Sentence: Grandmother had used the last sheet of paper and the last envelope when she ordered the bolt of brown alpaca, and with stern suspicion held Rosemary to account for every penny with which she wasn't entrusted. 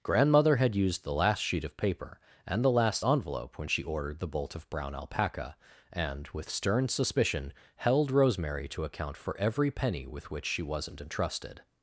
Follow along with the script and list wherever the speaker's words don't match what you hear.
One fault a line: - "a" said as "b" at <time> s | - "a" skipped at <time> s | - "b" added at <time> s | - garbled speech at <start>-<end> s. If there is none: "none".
none